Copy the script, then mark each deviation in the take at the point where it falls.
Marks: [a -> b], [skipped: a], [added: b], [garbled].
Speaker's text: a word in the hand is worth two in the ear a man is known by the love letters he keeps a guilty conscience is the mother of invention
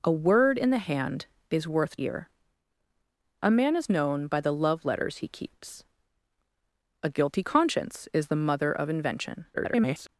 a word in the hand is worth [skipped: two in the] ear a man is known by the love letters he keeps a guilty conscience is the mother of invention [garbled]